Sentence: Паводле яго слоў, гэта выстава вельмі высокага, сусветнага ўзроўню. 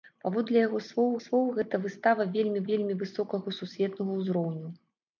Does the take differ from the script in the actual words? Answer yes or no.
yes